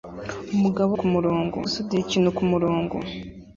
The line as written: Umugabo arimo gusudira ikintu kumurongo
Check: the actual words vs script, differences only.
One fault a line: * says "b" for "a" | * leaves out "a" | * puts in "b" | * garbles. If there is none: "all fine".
* says "kumurongo" for "arimo"